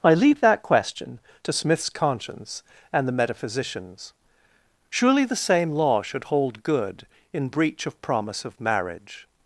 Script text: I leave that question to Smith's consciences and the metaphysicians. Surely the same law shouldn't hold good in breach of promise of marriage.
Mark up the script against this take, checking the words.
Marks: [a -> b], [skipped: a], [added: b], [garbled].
I leave that question to Smith's [consciences -> conscience] and the metaphysicians. Surely the same law [shouldn't -> should] hold good in breach of promise of marriage.